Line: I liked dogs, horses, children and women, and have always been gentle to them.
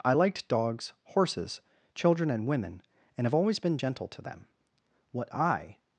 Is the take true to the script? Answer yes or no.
no